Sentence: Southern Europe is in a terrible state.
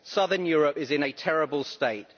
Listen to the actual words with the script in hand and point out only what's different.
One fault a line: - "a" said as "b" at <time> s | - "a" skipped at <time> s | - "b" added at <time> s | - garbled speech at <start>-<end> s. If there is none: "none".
none